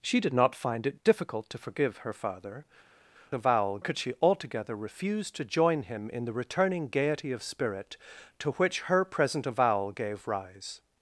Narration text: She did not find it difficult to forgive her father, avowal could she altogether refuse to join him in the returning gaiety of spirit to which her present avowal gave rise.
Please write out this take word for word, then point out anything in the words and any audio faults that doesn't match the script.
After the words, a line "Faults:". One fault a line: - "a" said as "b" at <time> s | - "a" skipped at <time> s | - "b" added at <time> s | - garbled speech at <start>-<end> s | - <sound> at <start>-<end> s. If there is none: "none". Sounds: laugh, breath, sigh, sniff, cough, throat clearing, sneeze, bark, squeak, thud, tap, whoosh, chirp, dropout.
She did not find it difficult to forgive her father, avowal could she altogether refuse to join him in the returning gaiety of spirit to which her present avowal gave rise.
Faults:
none